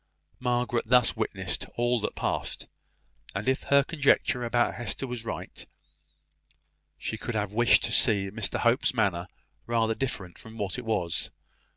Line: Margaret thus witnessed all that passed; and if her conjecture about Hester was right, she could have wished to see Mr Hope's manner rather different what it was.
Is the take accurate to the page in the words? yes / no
no